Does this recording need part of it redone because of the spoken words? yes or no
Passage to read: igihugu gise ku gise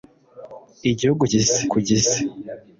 no